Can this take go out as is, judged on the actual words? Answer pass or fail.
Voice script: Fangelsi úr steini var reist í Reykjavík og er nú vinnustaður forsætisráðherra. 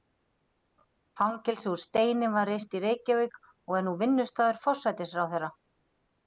pass